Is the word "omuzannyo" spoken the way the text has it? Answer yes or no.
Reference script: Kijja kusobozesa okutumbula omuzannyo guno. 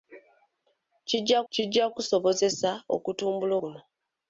no